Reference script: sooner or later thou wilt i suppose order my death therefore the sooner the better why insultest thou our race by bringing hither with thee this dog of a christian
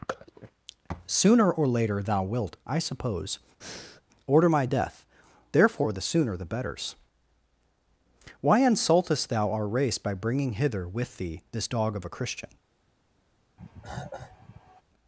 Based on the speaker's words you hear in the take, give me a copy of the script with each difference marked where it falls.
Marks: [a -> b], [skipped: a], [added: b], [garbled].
sooner or later thou wilt i suppose order my death therefore the sooner the [better -> betters] why insultest thou our race by bringing hither with thee this dog of a christian